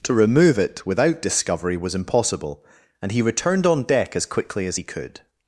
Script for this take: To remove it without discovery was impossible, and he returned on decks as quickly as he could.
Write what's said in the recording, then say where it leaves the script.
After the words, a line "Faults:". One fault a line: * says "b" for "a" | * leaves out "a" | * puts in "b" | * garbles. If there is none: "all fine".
To remove it without discovery was impossible, and he returned on deck as quickly as he could.
Faults:
* says "deck" for "decks"